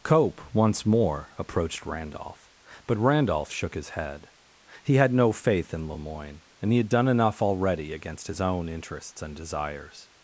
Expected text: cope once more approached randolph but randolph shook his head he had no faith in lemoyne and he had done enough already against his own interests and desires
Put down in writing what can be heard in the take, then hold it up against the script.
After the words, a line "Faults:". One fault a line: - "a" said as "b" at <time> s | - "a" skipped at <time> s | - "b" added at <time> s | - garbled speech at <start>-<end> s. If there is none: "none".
cope once more approached randolph but randolph shook his head he had no faith in lemoyne and he had done enough already against his own interests and desires
Faults:
none